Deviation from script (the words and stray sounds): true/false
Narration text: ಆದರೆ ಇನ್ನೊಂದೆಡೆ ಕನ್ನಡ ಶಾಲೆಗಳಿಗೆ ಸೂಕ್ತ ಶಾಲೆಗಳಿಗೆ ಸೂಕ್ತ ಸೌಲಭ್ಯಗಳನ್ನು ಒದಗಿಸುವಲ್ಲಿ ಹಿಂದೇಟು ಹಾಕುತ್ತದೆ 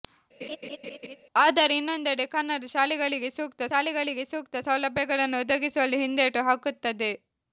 true